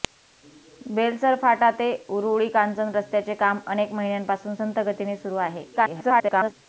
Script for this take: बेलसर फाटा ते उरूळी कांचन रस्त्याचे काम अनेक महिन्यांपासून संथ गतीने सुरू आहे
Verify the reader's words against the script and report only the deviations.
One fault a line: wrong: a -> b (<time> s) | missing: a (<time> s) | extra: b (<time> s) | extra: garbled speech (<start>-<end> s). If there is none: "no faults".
extra: garbled speech (5.7-6.5 s)